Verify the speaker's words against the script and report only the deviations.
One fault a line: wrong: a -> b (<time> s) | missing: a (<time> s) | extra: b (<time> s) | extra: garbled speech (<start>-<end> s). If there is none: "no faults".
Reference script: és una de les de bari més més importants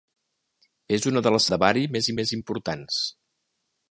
no faults